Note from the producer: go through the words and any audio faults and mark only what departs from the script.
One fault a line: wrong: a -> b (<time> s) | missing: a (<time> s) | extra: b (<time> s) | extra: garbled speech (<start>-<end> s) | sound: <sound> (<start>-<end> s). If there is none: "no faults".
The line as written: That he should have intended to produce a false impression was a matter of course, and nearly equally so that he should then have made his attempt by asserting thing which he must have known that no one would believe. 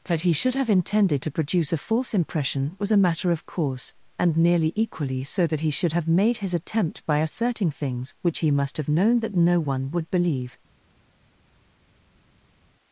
missing: then (5.9 s)
wrong: thing -> things (7.7 s)